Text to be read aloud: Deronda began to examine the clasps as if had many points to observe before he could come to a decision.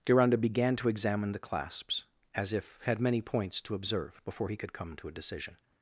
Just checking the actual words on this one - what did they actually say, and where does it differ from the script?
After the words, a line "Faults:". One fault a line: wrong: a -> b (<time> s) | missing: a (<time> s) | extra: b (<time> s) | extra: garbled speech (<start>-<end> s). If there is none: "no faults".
Deronda began to examine the clasps as if had many points to observe before he could come to a decision.
Faults:
no faults